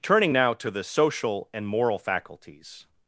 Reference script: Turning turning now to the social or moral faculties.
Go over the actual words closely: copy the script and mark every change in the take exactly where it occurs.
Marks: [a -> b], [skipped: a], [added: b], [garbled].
Turning [skipped: turning] now to the social [or -> and] moral faculties.